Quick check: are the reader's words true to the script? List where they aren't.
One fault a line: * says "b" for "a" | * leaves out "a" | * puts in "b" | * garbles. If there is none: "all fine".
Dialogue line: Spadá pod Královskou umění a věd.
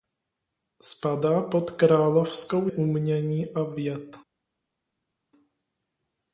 all fine